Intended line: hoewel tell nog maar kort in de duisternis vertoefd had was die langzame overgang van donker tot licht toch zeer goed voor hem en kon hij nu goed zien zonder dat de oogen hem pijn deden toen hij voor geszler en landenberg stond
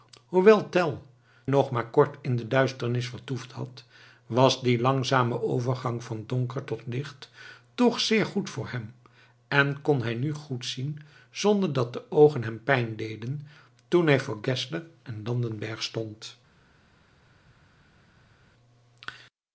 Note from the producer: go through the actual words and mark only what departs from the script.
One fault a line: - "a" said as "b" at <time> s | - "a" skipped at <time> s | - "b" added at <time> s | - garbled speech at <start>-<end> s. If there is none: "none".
none